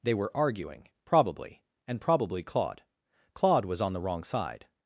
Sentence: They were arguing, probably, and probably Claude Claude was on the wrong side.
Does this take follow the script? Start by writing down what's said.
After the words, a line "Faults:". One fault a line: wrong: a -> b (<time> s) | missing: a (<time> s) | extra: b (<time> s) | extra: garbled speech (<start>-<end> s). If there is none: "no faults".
They were arguing, probably, and probably Claude Claude was on the wrong side.
Faults:
no faults